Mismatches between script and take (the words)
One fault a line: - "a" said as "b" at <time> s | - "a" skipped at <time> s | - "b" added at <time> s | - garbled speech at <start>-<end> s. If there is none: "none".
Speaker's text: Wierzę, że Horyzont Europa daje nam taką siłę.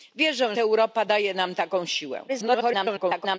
- "że Horyzont" skipped at 0.6 s
- garbled speech at 2.3-3.4 s